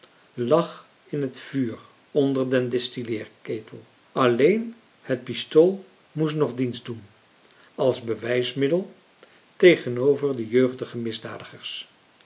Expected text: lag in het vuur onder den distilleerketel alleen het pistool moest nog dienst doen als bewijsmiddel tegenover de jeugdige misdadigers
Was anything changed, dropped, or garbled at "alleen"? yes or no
no